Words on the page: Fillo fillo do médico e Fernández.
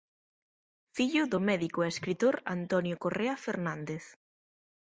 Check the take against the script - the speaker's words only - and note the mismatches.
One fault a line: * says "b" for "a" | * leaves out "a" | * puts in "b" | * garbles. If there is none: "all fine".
* leaves out "fillo"
* puts in "escritor Antonio Correa"